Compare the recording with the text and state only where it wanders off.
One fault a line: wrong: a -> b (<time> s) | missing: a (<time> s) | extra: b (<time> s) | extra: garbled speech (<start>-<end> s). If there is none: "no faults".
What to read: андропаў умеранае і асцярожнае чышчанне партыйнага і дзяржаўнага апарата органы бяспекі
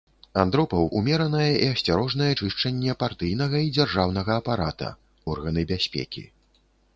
no faults